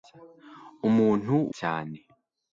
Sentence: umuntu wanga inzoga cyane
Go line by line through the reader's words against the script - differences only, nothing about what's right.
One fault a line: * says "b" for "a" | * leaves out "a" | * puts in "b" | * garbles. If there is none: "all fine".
* leaves out "wanga inzoga"